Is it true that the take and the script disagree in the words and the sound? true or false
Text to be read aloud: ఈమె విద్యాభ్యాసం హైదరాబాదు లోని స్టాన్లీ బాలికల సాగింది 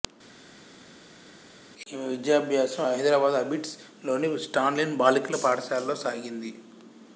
true